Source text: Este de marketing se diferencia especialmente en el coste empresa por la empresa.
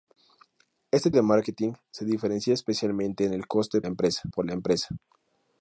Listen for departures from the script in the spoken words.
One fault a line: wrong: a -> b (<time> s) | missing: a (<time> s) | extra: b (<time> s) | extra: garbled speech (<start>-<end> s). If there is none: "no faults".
no faults